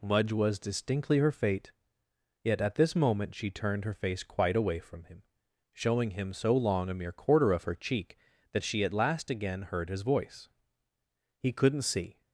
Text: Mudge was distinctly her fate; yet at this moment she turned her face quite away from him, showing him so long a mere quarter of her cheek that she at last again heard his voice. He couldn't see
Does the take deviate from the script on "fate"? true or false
false